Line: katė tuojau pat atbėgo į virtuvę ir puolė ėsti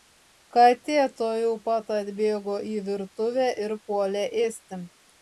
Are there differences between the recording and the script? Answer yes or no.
no